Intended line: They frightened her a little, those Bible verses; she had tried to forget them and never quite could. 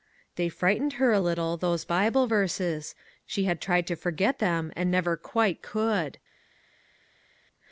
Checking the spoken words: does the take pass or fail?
pass